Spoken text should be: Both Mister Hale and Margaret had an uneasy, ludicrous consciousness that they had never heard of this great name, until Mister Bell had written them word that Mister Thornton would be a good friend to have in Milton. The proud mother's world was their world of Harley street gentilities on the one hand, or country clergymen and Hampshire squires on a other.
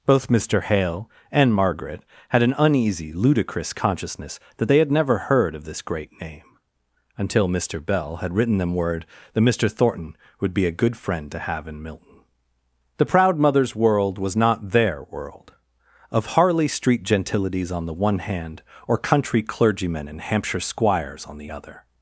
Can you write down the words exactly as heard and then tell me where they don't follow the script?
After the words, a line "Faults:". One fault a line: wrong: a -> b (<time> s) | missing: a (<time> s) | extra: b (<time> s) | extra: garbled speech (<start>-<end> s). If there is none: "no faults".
Both Mister Hale and Margaret had an uneasy, ludicrous consciousness that they had never heard of this great name, until Mister Bell had written them word that Mister Thornton would be a good friend to have in Milton. The proud mother's world was not their world of Harley street gentilities on the one hand, or country clergymen and Hampshire squires on the other.
Faults:
extra: not (14.4 s)
wrong: a -> the (21.4 s)